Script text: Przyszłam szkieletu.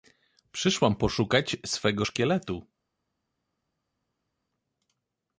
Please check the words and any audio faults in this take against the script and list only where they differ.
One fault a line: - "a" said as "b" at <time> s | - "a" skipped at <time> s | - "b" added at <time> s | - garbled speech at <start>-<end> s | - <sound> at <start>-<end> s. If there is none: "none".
- "poszukać swego" added at 0.9 s